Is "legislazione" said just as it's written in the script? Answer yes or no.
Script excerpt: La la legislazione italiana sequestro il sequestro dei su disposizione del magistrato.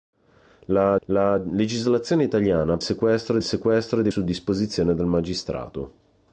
yes